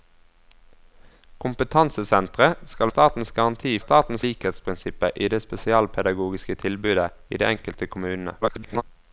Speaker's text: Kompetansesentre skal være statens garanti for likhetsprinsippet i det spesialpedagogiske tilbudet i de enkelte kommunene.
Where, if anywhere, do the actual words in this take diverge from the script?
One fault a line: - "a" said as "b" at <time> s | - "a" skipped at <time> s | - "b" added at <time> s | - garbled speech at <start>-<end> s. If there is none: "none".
- "være" skipped at 2.9 s
- "for" said as "statens" at 3.8 s
- garbled speech at 8.4-8.8 s